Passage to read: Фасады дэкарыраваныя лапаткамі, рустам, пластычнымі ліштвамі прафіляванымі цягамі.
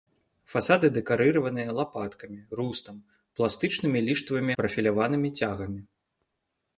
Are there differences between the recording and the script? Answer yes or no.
no